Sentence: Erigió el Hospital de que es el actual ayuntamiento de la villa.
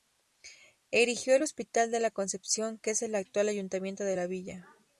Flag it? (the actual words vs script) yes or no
yes